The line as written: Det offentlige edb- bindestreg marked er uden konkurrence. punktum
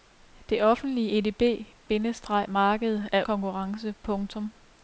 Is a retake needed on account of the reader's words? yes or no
yes